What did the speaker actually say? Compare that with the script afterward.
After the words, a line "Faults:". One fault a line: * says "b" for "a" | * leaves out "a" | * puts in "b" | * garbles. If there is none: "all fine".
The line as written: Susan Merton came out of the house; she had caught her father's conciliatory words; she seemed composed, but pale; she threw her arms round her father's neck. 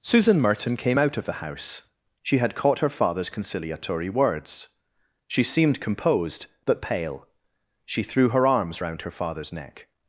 Susan Merton came out of the house; she had caught her father's conciliatory words; she seemed composed, but pale; she threw her arms round her father's neck.
Faults:
all fine